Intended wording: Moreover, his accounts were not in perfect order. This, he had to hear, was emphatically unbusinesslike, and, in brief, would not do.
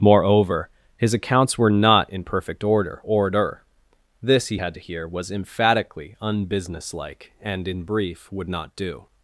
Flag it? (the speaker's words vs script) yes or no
yes